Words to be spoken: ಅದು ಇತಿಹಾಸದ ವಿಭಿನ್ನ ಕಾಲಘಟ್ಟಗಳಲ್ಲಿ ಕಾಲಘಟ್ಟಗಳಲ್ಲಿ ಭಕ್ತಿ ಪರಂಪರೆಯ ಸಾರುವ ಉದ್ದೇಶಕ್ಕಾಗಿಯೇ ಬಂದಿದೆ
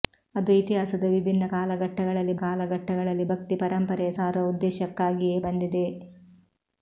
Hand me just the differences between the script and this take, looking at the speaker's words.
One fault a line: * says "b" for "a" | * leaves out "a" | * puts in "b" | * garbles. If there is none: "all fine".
all fine